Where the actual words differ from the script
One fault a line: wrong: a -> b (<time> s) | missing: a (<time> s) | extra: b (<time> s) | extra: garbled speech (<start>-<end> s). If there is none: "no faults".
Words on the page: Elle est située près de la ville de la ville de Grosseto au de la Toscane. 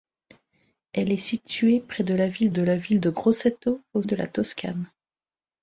no faults